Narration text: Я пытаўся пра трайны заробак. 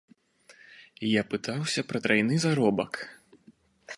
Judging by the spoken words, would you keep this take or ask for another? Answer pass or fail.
pass